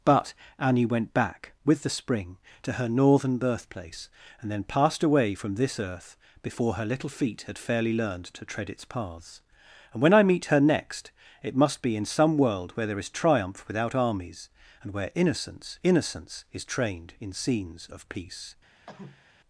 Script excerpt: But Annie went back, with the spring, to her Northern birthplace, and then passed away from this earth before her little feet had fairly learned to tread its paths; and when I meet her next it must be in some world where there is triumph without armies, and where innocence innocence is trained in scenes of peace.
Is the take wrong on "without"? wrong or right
right